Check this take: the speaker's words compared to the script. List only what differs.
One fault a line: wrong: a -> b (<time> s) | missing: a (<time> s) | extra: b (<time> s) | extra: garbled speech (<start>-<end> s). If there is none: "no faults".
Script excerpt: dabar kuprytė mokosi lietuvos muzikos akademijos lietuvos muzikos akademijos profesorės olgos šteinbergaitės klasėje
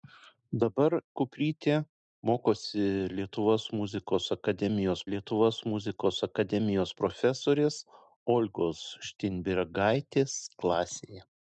no faults